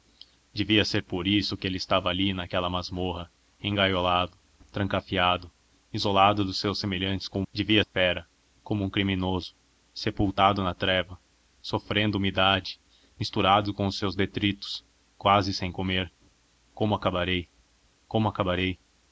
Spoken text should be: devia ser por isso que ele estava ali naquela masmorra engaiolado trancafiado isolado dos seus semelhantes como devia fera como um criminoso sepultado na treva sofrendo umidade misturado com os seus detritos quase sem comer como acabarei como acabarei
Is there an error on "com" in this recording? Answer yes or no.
no